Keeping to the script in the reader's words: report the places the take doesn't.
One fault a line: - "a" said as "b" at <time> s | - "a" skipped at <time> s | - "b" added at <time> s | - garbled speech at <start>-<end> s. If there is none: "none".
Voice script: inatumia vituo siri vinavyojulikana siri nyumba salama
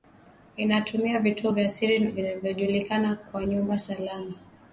- "vya" added at 1.5 s
- "siri" said as "kama" at 3.1 s